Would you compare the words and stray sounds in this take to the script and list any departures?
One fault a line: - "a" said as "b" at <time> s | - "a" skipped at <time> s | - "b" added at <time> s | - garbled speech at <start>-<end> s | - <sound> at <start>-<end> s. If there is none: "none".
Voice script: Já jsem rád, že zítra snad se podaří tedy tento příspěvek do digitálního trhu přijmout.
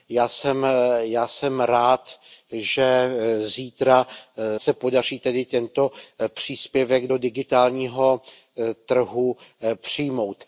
- "snad" skipped at 4.1 s